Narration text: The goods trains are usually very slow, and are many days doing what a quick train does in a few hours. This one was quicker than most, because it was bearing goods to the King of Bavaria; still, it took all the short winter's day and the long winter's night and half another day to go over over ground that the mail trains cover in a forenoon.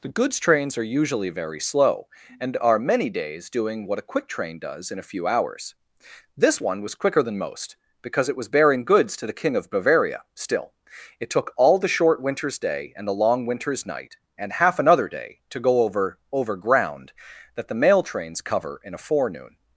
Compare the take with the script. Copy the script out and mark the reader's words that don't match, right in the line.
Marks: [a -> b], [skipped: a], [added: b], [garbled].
The goods trains are usually very slow, and are many days doing what a quick train does in a few hours. This one was quicker than most, because it was bearing goods to the King of Bavaria; still, it took all the short winter's day and the long winter's night and half another day to go over over ground that the mail trains cover in a forenoon.